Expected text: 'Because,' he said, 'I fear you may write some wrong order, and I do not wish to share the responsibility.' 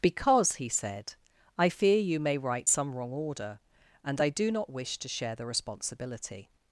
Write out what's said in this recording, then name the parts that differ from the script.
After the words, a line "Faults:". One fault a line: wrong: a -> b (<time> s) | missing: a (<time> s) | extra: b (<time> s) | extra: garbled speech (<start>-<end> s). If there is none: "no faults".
'Because,' he said, 'I fear you may write some wrong order, and I do not wish to share the responsibility.'
Faults:
no faults